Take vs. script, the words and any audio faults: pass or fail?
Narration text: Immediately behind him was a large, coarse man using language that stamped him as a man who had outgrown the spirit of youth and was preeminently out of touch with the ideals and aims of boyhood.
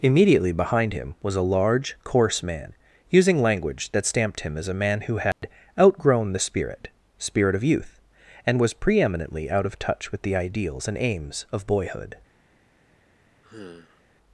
fail